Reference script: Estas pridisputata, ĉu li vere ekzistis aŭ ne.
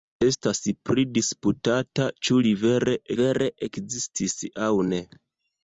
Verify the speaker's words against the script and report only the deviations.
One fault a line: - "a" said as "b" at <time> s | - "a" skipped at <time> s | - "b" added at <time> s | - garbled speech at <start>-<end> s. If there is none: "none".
- "vere" added at 3.2 s